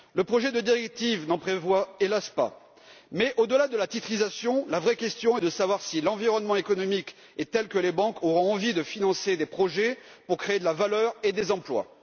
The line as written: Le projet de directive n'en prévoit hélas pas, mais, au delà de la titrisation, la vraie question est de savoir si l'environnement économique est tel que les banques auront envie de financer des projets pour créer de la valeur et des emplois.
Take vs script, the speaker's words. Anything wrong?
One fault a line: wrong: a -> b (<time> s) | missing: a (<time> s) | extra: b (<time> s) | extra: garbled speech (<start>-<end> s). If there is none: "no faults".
no faults